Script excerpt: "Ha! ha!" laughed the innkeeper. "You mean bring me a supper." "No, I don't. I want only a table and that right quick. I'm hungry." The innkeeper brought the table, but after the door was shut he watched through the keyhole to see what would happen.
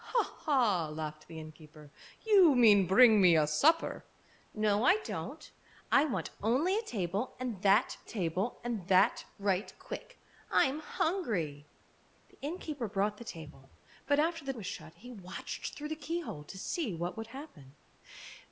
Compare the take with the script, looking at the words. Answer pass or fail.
fail